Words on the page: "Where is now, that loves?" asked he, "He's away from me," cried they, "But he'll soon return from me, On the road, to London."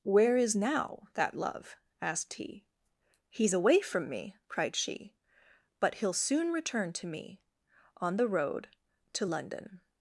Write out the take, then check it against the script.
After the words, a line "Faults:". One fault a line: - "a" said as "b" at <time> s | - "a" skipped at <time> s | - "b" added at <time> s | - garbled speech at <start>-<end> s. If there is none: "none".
"Where is now, that love?" asked he, "He's away from me," cried she, "But he'll soon return to me, On the road, to London."
Faults:
- "loves" said as "love" at 1.4 s
- "they" said as "she" at 4.8 s
- "from" said as "to" at 6.9 s